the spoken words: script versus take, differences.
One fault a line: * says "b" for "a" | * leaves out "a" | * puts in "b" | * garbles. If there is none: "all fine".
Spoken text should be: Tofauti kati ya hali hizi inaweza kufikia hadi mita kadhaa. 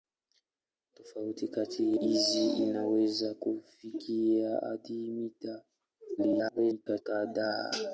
* leaves out "ya hali"
* garbles